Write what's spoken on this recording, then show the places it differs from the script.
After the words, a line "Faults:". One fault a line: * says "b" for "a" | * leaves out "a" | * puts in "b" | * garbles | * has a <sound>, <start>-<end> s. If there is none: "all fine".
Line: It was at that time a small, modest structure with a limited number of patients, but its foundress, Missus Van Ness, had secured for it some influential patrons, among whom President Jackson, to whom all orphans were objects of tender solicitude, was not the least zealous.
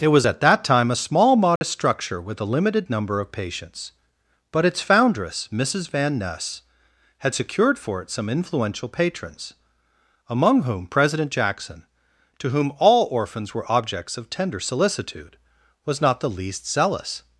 It was at that time a small, modest structure with a limited number of patients, but its foundress, Missus Van Ness, had secured for it some influential patrons, among whom President Jackson, to whom all orphans were objects of tender solicitude, was not the least zealous.
Faults:
* has a dropout, 1.6-1.6 s